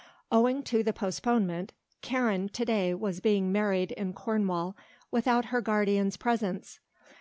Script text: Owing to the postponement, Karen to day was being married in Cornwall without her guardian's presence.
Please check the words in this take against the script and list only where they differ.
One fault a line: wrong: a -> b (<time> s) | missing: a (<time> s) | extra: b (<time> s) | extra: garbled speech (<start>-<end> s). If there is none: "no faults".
no faults